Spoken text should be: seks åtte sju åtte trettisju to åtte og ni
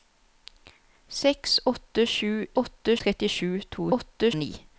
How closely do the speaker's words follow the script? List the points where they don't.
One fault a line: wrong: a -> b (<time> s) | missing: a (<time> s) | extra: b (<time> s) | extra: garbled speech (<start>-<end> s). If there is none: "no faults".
no faults